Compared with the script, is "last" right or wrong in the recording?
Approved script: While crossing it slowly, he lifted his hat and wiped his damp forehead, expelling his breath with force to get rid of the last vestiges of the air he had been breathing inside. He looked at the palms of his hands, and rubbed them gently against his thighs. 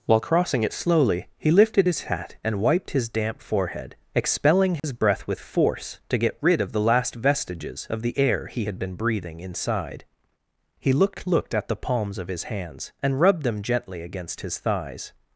right